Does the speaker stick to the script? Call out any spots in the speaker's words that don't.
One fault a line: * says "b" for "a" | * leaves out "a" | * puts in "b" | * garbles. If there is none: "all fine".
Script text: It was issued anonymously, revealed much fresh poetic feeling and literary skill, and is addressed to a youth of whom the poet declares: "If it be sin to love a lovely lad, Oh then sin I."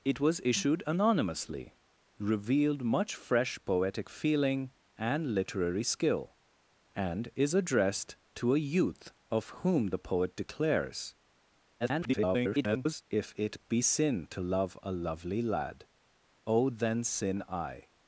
* garbles